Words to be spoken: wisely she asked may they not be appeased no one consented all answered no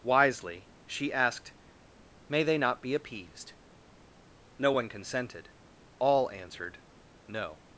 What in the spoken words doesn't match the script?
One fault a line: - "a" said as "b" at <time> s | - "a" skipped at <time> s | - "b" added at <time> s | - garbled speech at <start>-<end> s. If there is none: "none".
none